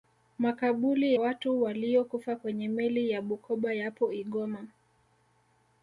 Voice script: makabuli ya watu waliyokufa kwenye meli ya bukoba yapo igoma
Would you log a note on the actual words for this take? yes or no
yes